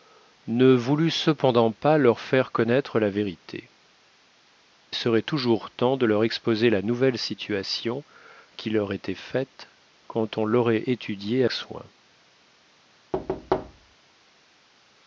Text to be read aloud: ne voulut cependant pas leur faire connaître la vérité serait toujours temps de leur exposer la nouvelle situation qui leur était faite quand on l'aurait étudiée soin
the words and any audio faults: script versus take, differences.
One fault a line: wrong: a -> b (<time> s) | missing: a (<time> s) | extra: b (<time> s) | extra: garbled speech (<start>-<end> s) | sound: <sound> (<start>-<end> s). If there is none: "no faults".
sound: thud (13.1-14.0 s)